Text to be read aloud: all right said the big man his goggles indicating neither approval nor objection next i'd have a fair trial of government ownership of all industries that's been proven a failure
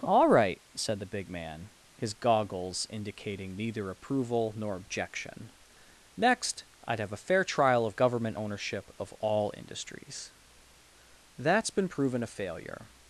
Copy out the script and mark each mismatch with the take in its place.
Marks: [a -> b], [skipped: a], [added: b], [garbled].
all right said the big man his goggles indicating neither approval nor objection next i'd have a fair trial of government ownership of all industries that's been proven a failure